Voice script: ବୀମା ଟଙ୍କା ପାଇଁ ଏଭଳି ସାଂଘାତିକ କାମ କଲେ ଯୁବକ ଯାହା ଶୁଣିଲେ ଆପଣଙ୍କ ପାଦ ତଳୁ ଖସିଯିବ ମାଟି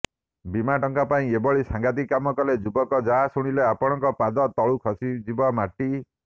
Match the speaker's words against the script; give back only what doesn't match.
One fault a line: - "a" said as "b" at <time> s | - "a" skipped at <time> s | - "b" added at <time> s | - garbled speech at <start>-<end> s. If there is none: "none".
none